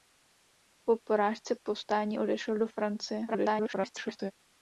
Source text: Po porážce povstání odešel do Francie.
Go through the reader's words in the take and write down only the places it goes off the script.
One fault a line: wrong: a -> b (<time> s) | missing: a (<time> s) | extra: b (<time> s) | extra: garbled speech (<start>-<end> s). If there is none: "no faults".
extra: garbled speech (3.3-4.3 s)